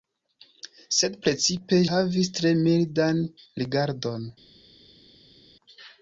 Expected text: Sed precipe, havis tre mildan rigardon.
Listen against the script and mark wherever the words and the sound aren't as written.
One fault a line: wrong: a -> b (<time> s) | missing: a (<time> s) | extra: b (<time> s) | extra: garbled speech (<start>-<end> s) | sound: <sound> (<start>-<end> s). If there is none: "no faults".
no faults